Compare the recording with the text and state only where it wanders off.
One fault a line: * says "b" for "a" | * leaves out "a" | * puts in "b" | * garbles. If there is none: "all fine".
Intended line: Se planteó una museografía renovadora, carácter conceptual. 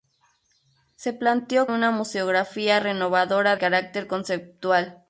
all fine